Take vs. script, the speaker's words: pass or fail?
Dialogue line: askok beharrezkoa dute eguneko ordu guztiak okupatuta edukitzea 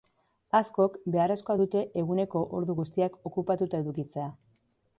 pass